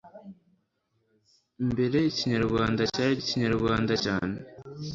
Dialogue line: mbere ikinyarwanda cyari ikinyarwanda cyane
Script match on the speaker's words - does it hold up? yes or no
yes